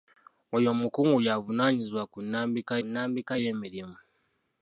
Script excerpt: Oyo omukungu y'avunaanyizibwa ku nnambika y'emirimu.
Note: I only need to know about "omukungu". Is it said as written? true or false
true